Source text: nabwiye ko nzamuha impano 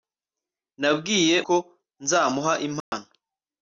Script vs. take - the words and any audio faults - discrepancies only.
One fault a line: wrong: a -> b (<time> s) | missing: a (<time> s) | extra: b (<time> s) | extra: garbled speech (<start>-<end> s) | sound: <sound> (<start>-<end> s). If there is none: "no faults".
sound: dropout (2.8-2.9 s)